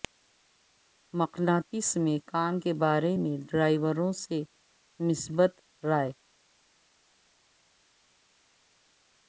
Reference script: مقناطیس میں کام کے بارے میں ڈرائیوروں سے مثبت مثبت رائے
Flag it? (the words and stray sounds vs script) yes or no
yes